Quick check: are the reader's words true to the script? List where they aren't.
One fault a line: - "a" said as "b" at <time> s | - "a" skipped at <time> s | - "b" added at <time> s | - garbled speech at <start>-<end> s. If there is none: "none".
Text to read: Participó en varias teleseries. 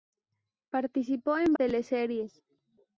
- "varias" skipped at 1.5 s